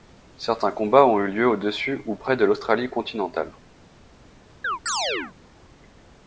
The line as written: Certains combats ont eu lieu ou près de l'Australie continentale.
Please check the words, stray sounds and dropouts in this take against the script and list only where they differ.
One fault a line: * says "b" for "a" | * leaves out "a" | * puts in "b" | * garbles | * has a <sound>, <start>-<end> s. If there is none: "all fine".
* puts in "au dessus"
* has a chirp, 4.6-5.3 s